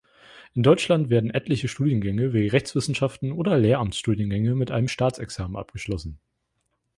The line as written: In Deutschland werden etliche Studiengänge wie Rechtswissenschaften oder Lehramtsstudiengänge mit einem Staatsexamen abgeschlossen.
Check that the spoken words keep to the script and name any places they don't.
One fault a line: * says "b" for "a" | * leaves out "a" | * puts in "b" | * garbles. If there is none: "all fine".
all fine